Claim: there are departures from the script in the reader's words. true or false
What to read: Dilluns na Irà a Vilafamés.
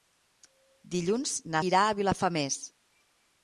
false